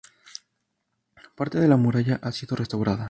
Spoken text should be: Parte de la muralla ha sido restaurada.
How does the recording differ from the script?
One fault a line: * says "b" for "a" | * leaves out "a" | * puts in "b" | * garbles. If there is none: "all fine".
all fine